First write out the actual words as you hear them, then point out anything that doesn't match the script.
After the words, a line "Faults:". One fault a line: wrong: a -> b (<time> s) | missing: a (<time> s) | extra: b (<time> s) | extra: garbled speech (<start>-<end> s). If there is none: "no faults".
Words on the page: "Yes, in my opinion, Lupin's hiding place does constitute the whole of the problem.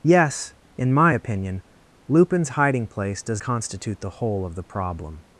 "Yes, in my opinion, Lupin's hiding place does constitute the whole of the problem.
Faults:
no faults